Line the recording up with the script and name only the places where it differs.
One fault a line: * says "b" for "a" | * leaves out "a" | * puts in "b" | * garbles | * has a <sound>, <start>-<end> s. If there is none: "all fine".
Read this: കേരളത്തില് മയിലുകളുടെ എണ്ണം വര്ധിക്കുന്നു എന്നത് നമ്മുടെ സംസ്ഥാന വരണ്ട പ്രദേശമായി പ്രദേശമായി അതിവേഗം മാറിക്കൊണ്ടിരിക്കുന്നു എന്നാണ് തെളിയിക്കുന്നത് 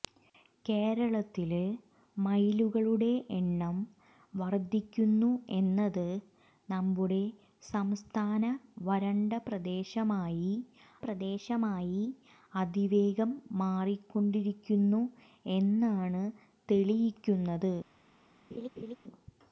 * has a laugh, 18.5-19.0 s